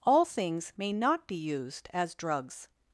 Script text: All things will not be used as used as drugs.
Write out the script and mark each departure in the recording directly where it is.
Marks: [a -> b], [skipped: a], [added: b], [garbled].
All things [will -> may] not be used as [skipped: used as] drugs.